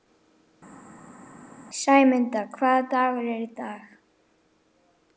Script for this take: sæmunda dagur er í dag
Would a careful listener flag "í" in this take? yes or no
no